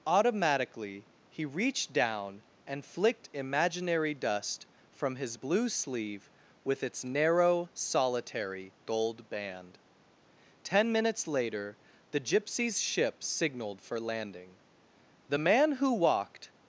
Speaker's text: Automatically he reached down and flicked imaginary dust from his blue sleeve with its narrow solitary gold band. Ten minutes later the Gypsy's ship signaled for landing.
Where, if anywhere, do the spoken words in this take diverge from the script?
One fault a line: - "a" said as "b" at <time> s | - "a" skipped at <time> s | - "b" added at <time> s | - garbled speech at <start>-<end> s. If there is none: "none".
- "The man who walked" added at 15.3 s